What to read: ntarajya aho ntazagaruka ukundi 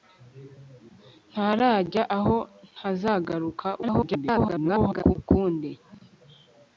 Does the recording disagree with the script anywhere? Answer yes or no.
yes